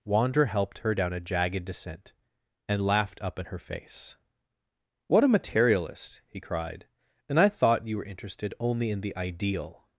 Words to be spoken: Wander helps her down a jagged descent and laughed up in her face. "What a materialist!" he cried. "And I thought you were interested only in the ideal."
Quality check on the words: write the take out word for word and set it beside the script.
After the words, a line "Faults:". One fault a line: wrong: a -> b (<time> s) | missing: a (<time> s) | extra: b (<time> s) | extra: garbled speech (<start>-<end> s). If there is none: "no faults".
Wander helped her down a jagged descent and laughed up in her face. "What a materialist!" he cried. "And I thought you were interested only in the ideal."
Faults:
wrong: helps -> helped (0.5 s)